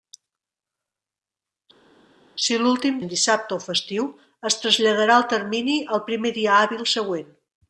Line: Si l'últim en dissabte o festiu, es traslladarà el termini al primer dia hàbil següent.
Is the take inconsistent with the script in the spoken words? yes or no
no